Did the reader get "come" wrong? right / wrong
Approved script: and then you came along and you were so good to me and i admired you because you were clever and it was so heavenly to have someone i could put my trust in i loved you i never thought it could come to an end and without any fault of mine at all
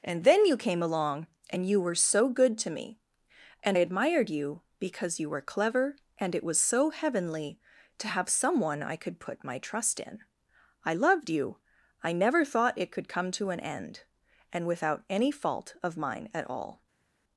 right